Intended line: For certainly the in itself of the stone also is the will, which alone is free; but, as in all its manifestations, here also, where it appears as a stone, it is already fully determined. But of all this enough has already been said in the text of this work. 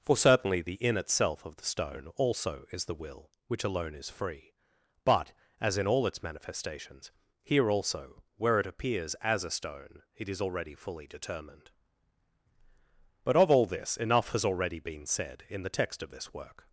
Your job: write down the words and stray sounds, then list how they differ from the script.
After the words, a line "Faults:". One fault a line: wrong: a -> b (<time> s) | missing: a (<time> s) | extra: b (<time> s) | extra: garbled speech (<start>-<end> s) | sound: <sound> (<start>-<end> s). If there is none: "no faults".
For certainly the in itself of the stone also is the will, which alone is free; but, as in all its manifestations, here also, where it appears as a stone, it is already fully determined. But of all this enough has already been said in the text of this work.
Faults:
no faults